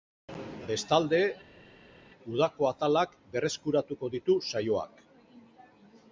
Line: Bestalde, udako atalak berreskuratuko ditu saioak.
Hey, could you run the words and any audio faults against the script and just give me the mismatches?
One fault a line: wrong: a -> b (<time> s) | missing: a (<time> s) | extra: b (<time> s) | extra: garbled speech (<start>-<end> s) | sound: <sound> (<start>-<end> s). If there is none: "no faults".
no faults